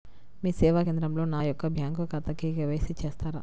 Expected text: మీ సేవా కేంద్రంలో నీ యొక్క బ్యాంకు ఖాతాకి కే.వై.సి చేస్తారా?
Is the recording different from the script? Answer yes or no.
yes